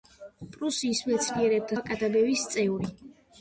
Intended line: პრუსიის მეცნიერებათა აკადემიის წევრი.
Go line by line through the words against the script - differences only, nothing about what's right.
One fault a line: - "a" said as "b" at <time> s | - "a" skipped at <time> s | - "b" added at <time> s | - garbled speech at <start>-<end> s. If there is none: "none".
none